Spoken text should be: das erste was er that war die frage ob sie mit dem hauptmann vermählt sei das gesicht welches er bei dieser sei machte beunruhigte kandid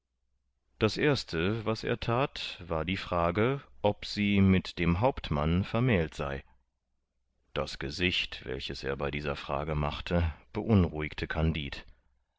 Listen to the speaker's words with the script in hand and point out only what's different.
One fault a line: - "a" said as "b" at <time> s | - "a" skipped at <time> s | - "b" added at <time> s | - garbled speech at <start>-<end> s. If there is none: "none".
- "sei" said as "frage" at 9.4 s